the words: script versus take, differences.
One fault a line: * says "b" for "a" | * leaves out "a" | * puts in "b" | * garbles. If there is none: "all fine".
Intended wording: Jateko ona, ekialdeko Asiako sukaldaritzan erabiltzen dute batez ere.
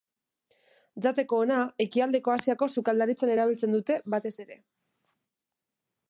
all fine